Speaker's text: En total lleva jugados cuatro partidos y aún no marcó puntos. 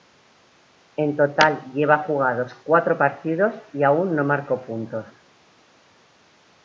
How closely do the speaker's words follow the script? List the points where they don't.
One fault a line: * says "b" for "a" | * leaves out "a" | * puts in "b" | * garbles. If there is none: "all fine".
all fine